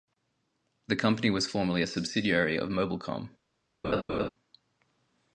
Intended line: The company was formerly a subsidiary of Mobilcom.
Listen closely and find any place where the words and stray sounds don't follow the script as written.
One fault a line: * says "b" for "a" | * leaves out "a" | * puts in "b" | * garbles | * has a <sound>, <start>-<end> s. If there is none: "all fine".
* has a laugh, 3.8-4.3 s